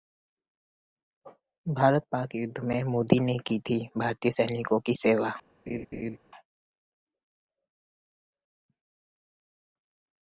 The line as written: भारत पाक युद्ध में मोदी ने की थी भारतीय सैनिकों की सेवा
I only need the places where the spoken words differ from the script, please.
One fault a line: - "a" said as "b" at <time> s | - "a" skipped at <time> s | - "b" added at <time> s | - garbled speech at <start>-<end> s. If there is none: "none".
none